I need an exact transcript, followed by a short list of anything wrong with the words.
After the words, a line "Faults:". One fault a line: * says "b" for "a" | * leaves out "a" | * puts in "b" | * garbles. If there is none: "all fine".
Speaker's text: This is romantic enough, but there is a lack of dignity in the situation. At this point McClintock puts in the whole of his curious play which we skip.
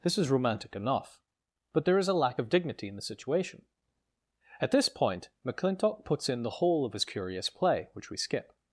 This is romantic enough, but there is a lack of dignity in the situation. At this point McClintock puts in the whole of his curious play which we skip.
Faults:
all fine